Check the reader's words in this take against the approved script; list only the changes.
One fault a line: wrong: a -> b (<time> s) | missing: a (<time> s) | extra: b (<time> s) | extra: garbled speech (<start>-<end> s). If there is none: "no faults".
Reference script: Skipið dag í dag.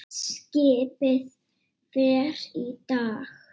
wrong: dag -> fer (1.9 s)